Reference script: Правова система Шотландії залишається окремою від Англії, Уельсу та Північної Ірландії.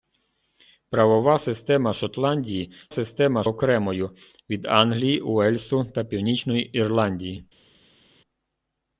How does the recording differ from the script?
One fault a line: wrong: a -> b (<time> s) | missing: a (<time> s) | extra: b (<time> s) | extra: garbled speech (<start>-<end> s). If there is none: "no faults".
wrong: залишається -> система (2.9 s)